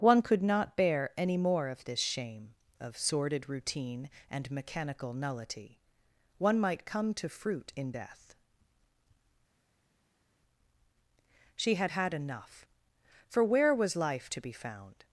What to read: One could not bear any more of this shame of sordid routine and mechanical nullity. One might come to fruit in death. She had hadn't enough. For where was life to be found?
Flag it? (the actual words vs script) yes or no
yes